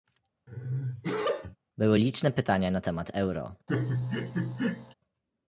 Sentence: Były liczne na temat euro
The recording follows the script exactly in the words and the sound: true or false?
false